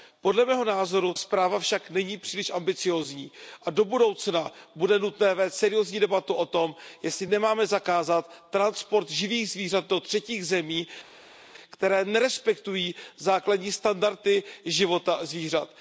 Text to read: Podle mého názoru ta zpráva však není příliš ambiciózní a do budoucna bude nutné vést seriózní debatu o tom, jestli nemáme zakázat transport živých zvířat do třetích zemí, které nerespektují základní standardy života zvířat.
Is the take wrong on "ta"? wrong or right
wrong